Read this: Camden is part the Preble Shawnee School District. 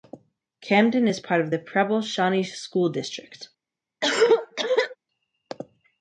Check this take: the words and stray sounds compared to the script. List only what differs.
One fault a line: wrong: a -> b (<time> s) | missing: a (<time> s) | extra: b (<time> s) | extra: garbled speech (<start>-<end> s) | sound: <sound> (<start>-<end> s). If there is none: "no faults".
extra: of (1.4 s)
sound: cough (4.0-5.0 s)